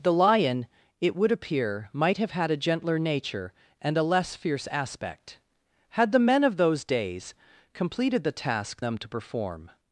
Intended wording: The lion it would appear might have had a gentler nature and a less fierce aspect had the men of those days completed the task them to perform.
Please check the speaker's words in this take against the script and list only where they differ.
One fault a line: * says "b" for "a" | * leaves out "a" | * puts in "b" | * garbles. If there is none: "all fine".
all fine